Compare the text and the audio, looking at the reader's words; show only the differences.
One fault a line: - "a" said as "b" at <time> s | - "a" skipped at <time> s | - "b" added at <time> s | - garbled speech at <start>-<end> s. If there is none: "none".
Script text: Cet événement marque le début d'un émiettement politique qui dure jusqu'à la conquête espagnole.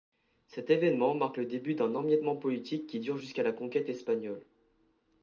none